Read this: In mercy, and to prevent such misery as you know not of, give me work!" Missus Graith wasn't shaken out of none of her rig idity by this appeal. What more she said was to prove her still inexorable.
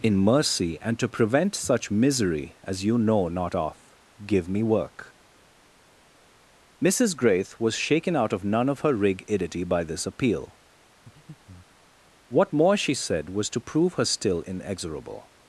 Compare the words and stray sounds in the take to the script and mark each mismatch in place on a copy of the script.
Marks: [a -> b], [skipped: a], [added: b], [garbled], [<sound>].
In mercy, and to prevent such misery as you know not of, give me work!" Missus Graith [wasn't -> was] shaken out of none of her rig idity by this appeal. [breath] What more she said was to prove her still inexorable.